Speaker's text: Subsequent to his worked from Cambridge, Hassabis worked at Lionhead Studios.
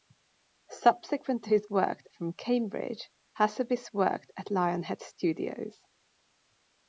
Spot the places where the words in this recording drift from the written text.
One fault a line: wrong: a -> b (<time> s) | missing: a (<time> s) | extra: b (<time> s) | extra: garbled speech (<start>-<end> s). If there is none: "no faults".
no faults